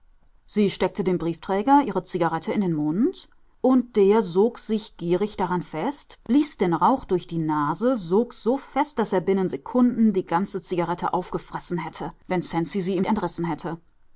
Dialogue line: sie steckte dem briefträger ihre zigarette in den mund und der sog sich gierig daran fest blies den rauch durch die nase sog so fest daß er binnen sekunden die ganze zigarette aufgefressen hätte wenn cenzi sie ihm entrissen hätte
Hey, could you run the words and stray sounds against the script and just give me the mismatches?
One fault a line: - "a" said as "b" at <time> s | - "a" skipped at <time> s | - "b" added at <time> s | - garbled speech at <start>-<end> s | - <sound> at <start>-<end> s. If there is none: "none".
none